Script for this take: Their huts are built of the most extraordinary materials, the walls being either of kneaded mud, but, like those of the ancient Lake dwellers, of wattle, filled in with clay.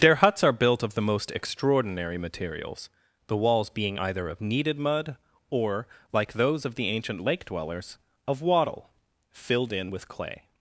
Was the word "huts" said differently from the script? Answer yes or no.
no